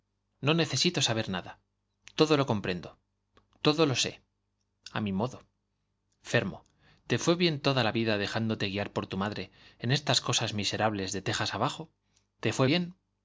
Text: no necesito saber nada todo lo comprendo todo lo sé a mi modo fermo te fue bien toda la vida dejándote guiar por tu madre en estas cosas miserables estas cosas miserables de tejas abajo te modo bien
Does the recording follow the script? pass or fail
fail